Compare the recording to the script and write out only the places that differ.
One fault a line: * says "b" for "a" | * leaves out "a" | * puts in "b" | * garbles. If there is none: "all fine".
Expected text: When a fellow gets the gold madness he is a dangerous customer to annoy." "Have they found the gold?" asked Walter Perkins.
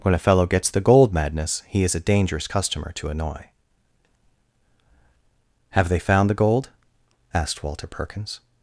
all fine